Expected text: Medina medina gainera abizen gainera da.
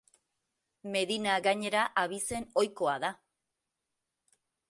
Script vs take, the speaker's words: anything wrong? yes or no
yes